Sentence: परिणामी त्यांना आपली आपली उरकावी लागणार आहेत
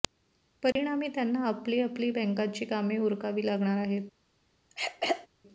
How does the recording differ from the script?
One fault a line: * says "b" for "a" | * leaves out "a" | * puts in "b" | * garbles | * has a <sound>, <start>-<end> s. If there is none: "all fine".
* has a dropout, 0.7-0.8 s
* puts in "बँकांची कामे"
* has a throat clearing, 4.7-5.3 s